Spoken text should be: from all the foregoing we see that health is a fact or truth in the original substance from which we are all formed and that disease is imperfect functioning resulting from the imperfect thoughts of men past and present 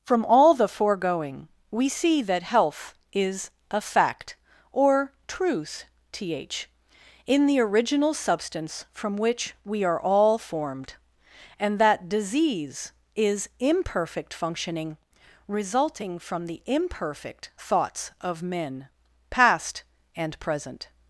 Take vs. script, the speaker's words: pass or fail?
fail